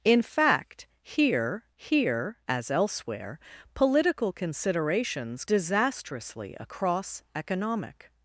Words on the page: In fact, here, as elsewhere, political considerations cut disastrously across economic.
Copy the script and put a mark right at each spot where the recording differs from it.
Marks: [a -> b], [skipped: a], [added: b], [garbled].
In fact, here, [added: here] as elsewhere, political considerations [skipped: cut] disastrously across economic.